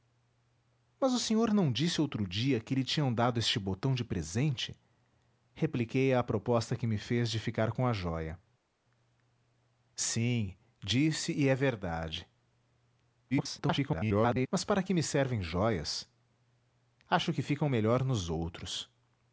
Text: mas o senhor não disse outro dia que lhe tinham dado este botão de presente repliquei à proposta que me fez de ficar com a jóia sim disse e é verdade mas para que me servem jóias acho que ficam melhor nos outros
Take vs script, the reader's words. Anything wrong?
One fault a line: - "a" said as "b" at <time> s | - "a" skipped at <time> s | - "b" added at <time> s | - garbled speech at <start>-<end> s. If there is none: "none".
- garbled speech at 13.3-14.5 s